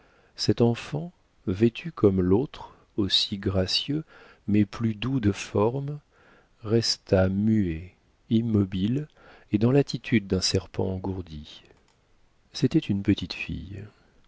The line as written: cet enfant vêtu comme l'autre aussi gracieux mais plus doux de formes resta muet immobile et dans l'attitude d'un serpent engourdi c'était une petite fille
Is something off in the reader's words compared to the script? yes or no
no